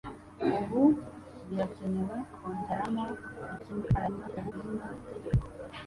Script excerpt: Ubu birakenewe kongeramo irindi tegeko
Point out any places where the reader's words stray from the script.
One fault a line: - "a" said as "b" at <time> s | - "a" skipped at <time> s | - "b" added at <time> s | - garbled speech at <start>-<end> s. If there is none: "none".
- garbled speech at 3.6-4.5 s